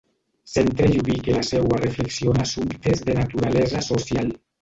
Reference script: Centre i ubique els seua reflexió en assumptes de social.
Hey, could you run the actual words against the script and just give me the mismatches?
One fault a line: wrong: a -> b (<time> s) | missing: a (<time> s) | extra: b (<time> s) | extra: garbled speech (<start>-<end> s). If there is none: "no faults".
wrong: els -> la (1.3 s)
extra: naturalesa (3.2 s)